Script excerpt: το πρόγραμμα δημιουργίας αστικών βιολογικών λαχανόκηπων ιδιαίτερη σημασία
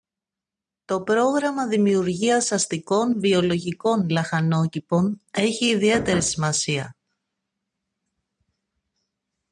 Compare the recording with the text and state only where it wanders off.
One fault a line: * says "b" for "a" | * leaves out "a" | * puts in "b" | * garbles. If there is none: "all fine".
* puts in "έχει"